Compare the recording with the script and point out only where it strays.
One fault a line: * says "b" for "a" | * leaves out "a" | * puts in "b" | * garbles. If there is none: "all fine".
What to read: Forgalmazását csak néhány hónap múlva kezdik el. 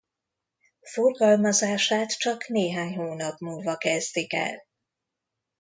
all fine